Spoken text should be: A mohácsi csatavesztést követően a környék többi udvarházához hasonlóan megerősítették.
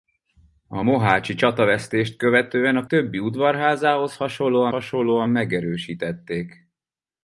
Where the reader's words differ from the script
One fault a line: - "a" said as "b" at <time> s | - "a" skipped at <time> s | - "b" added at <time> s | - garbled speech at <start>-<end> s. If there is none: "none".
- "környék" skipped at 2.8 s
- "hasonlóan" added at 4.7 s